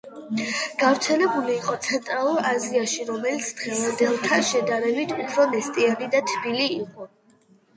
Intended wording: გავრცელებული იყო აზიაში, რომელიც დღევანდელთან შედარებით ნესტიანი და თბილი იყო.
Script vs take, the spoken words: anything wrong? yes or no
yes